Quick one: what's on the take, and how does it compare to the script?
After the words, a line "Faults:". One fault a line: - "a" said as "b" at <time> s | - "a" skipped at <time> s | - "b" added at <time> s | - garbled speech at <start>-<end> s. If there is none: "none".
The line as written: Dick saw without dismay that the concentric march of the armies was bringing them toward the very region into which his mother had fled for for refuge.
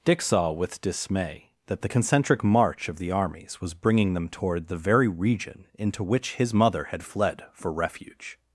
Dick saw with dismay that the concentric march of the armies was bringing them toward the very region into which his mother had fled for refuge.
Faults:
- "without" said as "with" at 0.5 s
- "for" skipped at 7.7 s